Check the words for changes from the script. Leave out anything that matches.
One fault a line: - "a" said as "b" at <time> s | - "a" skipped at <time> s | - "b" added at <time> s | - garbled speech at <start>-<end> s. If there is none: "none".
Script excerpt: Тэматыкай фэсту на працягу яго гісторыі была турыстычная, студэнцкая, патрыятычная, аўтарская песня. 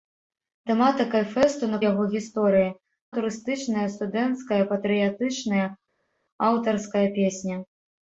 - "працягу" skipped at 1.8 s
- "была" skipped at 2.7 s